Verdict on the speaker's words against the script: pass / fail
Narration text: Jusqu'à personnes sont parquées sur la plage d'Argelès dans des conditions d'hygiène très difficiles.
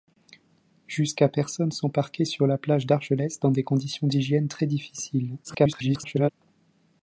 fail